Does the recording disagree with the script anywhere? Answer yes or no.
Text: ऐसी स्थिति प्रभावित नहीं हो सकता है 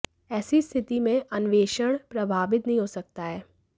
yes